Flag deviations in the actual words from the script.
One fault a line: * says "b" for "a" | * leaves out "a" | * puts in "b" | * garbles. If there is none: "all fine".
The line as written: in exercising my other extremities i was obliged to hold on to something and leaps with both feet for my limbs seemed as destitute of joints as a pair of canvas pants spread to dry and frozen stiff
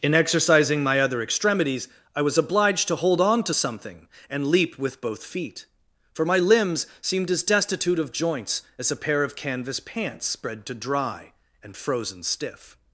* says "leap" for "leaps"